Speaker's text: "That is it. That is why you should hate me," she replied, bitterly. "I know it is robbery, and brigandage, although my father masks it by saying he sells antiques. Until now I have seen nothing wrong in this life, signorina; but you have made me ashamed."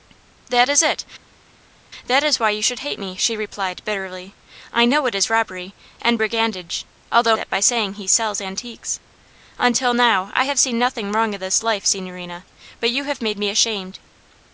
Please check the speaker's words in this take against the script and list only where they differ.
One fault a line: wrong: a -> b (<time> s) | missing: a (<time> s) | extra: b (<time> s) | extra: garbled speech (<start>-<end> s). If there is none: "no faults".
missing: my father masks (7.4 s)